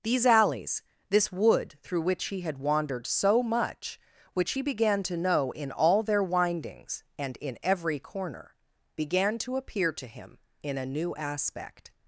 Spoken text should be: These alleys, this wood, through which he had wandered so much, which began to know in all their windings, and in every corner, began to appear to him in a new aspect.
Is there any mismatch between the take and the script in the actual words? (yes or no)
yes